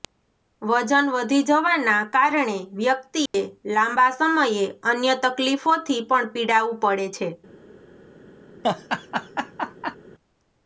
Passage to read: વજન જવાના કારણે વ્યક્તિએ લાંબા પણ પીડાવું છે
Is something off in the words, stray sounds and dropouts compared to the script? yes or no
yes